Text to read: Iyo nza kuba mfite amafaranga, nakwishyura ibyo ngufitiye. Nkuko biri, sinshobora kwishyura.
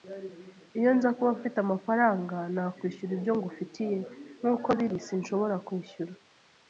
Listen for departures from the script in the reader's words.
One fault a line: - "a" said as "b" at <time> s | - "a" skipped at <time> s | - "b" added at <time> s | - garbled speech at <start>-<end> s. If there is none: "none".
none